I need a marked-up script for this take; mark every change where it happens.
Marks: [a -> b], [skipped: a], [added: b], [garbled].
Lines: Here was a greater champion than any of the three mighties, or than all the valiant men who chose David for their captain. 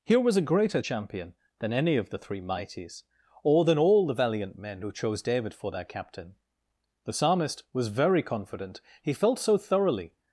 Here was a greater champion than any of the three mighties, or than all the valiant men who chose David for their captain. [added: The psalmist was very confident he felt so thoroughly]